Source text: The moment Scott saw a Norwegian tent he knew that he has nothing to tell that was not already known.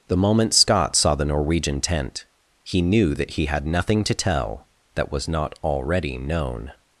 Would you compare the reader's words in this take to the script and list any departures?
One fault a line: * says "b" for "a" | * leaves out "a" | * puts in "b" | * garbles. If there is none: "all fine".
* says "the" for "a"
* says "had" for "has"